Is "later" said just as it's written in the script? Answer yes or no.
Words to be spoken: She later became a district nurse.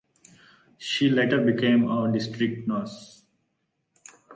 yes